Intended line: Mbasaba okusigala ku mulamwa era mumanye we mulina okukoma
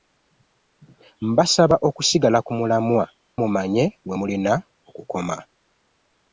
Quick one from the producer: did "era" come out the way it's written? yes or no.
no